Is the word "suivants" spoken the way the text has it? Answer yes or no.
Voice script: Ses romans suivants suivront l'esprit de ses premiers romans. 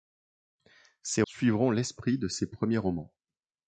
no